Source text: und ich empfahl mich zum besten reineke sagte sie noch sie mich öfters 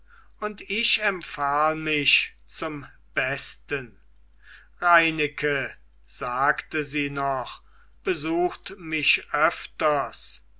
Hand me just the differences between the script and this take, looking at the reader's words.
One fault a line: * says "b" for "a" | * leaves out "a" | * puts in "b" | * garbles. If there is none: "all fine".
* says "besucht" for "sie"